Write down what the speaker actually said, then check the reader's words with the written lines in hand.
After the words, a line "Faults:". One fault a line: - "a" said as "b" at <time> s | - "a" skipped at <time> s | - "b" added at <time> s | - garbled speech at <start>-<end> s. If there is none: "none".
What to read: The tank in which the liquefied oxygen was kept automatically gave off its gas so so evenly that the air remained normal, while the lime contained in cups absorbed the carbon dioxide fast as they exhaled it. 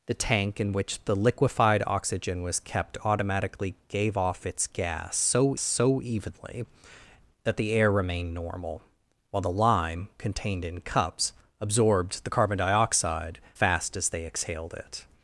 The tank in which the liquefied oxygen was kept automatically gave off its gas so so evenly that the air remained normal, while the lime contained in cups absorbed the carbon dioxide fast as they exhaled it.
Faults:
none